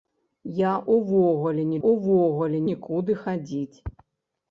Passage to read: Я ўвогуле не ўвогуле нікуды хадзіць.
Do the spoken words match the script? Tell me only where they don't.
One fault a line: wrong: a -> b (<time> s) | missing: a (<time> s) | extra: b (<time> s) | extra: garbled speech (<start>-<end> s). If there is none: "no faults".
no faults